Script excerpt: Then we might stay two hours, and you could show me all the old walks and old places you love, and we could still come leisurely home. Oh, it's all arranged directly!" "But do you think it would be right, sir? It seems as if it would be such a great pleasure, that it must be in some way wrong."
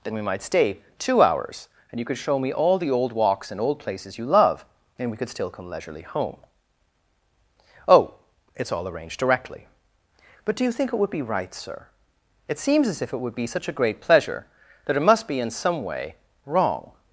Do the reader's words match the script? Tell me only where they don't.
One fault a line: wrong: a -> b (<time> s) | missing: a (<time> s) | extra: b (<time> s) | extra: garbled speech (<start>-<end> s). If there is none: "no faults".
no faults